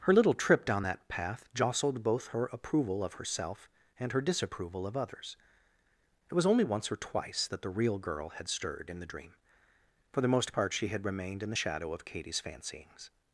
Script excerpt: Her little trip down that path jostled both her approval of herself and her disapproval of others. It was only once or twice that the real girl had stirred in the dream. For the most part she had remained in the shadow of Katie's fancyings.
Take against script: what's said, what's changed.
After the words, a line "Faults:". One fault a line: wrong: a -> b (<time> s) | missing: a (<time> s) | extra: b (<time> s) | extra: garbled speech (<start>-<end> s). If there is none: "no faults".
Her little trip down that path jostled both her approval of herself and her disapproval of others. It was only once or twice that the real girl had stirred in the dream. For the most part she had remained in the shadow of Katie's fancyings.
Faults:
no faults